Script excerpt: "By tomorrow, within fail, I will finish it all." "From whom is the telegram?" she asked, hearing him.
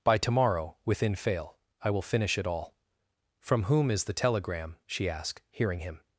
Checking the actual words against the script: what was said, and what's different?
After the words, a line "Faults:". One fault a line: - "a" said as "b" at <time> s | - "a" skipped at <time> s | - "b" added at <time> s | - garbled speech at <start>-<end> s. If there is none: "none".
"By tomorrow, within fail, I will finish it all." "From whom is the telegram?" she asked, hearing him.
Faults:
none